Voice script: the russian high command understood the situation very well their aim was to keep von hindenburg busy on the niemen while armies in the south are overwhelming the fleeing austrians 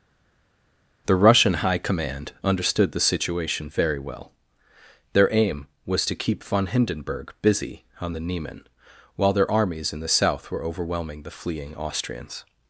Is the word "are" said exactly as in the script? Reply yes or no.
no